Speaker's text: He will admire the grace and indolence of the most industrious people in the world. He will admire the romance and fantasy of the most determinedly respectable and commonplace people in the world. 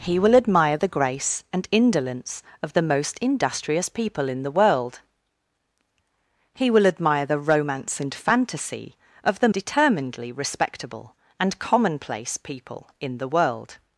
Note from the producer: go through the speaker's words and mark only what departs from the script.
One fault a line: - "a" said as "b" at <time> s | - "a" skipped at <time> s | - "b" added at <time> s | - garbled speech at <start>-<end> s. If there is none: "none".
- "most" skipped at 9.5 s